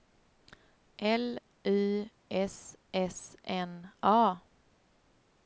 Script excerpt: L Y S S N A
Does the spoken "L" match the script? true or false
true